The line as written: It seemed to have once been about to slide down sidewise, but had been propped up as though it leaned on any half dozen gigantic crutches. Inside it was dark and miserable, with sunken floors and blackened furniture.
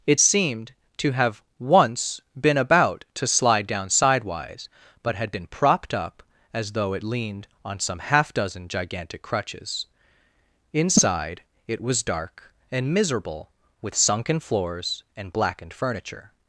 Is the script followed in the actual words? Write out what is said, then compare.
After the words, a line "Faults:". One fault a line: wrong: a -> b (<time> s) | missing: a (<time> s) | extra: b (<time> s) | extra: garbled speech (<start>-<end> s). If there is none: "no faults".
It seemed to have once been about to slide down sidewise, but had been propped up as though it leaned on some half dozen gigantic crutches. Inside it was dark and miserable, with sunken floors and blackened furniture.
Faults:
wrong: any -> some (7.8 s)